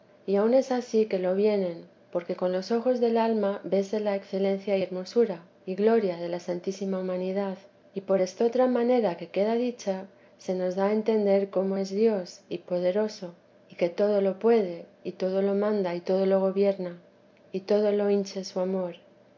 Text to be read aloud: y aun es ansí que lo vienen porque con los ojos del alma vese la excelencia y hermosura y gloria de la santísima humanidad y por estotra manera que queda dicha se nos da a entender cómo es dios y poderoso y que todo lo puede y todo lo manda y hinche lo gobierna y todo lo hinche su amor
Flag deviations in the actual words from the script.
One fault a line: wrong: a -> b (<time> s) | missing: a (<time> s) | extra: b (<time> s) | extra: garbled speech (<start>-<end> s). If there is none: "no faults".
wrong: hinche -> todo (16.0 s)